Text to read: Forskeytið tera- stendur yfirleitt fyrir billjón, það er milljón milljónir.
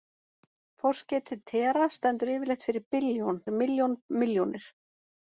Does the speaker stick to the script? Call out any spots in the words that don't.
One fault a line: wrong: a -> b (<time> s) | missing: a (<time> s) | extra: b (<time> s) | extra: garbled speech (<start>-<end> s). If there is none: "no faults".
missing: það (3.4 s)